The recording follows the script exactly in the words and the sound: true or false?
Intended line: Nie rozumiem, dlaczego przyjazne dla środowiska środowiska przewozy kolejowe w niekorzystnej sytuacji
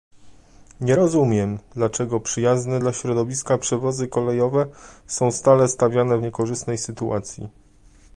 false